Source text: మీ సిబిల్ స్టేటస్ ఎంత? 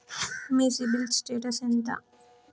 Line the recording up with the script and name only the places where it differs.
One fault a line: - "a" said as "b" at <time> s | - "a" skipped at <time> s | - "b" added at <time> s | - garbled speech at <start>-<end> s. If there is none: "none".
none